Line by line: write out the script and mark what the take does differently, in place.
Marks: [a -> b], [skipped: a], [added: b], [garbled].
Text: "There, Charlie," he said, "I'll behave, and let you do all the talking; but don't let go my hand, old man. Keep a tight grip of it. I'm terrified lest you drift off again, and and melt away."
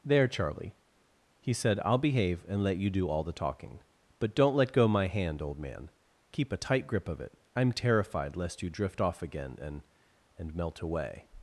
"There, Charlie," he said, "I'll behave, and let you do all the talking; but don't let go my hand, old man. Keep a tight grip of it. I'm terrified lest you drift off again, and and melt away."